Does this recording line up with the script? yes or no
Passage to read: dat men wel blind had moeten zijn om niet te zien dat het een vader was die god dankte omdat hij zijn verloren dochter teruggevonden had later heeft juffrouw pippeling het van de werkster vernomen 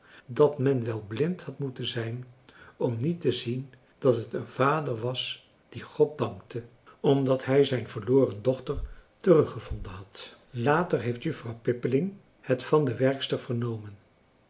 yes